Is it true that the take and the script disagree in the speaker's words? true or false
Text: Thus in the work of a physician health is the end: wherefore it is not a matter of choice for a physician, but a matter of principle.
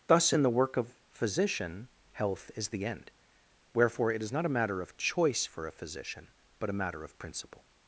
true